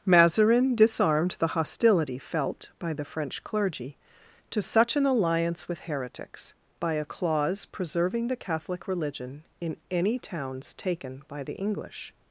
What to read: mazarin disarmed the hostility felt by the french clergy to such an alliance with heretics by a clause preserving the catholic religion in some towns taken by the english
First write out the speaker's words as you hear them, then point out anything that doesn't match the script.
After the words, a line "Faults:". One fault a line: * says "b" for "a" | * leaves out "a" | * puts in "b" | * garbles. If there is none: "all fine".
mazarin disarmed the hostility felt by the french clergy to such an alliance with heretics by a clause preserving the catholic religion in any towns taken by the english
Faults:
* says "any" for "some"